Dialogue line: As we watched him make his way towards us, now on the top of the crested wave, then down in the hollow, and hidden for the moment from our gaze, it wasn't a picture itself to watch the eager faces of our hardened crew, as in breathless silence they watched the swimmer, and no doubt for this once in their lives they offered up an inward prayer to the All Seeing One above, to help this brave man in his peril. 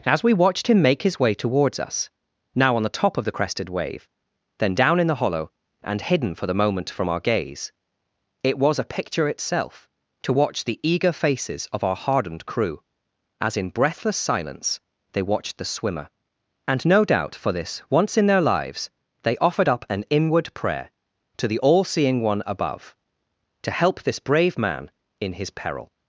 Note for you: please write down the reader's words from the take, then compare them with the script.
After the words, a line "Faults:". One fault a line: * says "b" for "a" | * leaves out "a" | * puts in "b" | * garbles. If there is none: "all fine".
As we watched him make his way towards us, now on the top of the crested wave, then down in the hollow, and hidden for the moment from our gaze, it was a picture itself to watch the eager faces of our hardened crew, as in breathless silence they watched the swimmer, and no doubt for this once in their lives they offered up an inward prayer to the All Seeing One above, to help this brave man in his peril.
Faults:
* says "was" for "wasn't"